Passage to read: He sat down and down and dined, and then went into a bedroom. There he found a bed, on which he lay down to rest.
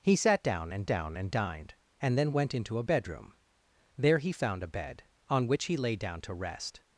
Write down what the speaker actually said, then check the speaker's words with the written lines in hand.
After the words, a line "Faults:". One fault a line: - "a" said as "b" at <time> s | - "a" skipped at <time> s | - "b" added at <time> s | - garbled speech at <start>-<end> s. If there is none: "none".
He sat down and down and dined, and then went into a bedroom. There he found a bed, on which he lay down to rest.
Faults:
none